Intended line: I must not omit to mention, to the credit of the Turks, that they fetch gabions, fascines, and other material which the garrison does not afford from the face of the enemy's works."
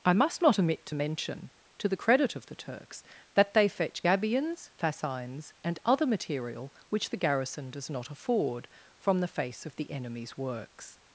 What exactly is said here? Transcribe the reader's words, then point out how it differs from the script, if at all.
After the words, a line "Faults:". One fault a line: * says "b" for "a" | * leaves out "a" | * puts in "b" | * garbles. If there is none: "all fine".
I must not omit to mention, to the credit of the Turks, that they fetch gabions, fascines, and other material which the garrison does not afford from the face of the enemy's works."
Faults:
all fine